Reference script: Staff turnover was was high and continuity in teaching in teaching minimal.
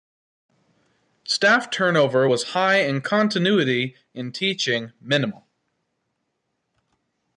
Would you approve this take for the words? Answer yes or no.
no